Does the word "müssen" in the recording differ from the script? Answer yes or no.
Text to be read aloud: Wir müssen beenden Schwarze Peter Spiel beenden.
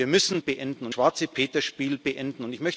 no